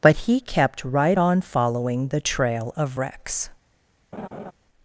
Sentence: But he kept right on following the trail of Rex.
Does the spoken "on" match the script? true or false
true